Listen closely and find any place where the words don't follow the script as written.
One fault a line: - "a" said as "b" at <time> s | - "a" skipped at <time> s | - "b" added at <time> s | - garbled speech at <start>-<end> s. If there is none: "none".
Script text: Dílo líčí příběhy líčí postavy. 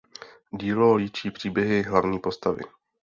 - "líčí" said as "hlavní" at 1.8 s